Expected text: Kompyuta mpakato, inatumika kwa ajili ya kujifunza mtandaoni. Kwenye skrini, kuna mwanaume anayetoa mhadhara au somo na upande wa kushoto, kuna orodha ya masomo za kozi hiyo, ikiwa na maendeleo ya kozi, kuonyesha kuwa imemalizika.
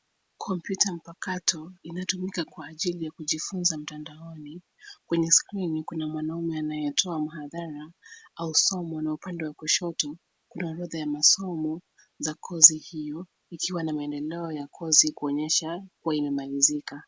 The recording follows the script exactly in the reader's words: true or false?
true